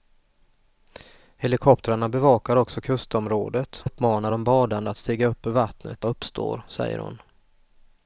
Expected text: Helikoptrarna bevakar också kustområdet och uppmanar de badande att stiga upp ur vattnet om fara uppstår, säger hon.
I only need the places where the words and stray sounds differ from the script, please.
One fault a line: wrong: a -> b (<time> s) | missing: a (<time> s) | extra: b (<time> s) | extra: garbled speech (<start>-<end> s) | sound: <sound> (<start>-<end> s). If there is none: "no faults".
missing: och (3.9 s)
missing: om fara (6.1 s)